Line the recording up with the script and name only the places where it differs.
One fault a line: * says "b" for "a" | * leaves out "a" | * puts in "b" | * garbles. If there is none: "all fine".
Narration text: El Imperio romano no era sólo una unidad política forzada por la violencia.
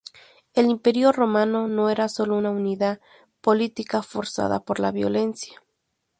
all fine